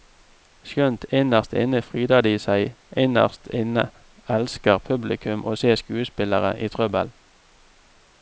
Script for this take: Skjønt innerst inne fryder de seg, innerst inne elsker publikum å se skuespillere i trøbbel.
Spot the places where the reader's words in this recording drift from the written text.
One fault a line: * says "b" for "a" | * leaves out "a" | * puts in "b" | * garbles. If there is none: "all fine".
all fine